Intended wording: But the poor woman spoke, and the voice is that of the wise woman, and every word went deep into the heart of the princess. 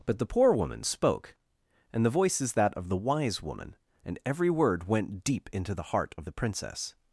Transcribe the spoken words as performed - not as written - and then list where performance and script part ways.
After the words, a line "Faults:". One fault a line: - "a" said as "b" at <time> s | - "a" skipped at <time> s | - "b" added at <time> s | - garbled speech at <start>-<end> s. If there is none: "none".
But the poor woman spoke, and the voice is that of the wise woman, and every word went deep into the heart of the princess.
Faults:
none